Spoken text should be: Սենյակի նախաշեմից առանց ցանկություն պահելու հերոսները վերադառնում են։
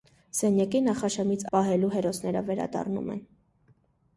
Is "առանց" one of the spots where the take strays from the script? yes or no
yes